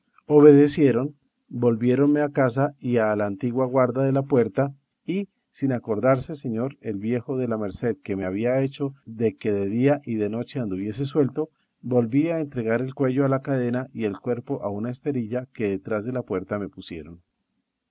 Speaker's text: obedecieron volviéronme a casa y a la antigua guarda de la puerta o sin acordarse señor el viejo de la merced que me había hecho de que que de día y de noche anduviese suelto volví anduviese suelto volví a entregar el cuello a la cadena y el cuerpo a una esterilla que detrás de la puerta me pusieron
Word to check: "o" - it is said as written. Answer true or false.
false